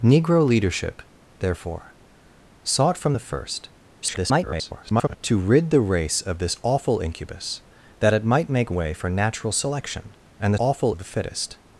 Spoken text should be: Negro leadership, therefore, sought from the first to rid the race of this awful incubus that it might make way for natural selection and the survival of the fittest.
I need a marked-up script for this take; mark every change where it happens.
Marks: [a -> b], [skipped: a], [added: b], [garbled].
Negro leadership, therefore, sought from the first [garbled] to rid the race of this awful incubus that it might make way for natural selection and the [survival -> awful] of the fittest.